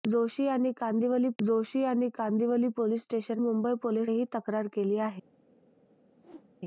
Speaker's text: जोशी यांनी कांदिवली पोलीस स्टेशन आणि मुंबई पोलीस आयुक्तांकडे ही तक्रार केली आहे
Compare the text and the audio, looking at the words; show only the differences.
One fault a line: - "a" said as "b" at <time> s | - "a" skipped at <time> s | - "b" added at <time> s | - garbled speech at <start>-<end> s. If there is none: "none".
- "जोशी यांनी कांदिवली" added at 1.4 s
- "आणि" skipped at 3.4 s
- "आयुक्तांकडे" skipped at 4.1 s